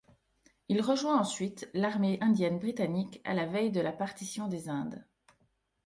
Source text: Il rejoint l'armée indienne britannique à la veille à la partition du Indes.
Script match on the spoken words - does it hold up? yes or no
no